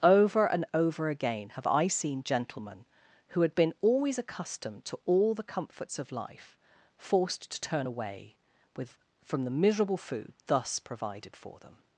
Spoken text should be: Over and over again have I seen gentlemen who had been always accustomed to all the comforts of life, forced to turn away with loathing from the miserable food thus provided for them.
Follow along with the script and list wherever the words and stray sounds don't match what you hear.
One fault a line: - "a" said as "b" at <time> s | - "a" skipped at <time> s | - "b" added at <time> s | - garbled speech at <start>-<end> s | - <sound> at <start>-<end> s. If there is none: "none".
- "loathing" skipped at 8.9 s